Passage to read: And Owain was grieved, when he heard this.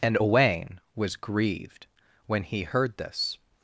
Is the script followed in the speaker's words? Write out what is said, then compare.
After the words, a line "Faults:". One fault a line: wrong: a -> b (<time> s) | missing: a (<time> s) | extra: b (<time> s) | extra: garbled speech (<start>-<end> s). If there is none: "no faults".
And Owain was grieved, when he heard this.
Faults:
no faults